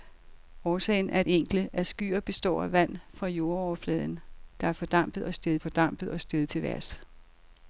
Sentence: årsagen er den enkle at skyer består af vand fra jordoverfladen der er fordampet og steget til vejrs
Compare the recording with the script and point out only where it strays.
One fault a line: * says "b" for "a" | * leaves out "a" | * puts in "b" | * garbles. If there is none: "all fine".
* leaves out "den"
* puts in "fordampet og steget"